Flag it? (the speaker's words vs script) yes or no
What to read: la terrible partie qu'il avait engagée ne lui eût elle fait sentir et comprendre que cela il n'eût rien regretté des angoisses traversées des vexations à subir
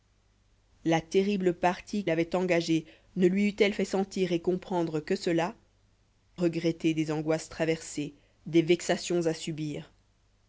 yes